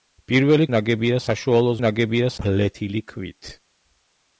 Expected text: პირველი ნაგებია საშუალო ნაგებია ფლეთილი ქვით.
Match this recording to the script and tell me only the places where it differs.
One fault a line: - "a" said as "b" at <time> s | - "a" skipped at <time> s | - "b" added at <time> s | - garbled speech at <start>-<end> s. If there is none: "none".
none